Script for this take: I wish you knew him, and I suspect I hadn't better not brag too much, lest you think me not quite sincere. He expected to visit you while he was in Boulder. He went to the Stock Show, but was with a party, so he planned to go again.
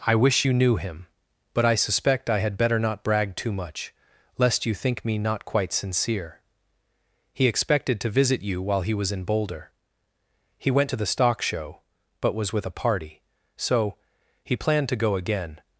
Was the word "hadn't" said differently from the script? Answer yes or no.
yes